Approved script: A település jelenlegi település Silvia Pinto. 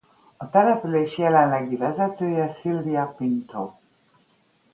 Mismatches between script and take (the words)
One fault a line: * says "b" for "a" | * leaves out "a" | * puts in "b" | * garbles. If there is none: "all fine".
* says "vezetője" for "település"